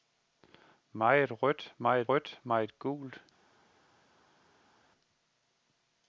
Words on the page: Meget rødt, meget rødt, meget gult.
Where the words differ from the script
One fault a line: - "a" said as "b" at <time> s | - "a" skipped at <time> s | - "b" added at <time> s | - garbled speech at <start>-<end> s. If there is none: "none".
none